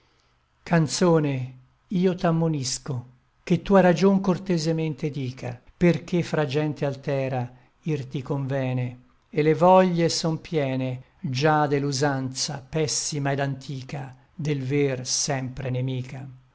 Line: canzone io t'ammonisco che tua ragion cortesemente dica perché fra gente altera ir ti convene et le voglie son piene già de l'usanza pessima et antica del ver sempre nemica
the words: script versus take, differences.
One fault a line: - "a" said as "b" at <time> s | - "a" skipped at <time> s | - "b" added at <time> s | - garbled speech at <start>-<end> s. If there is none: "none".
none